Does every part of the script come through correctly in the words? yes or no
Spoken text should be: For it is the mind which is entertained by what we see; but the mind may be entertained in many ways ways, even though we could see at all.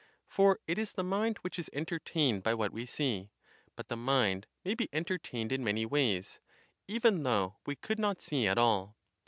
no